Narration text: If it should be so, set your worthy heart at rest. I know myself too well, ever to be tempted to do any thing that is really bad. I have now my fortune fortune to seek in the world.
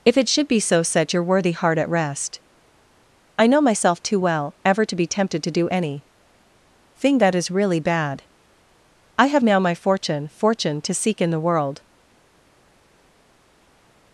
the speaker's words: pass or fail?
pass